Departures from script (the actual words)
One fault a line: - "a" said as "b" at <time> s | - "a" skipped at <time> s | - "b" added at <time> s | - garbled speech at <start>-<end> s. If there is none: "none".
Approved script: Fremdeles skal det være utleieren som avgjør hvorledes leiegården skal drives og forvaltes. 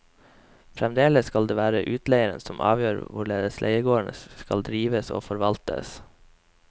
none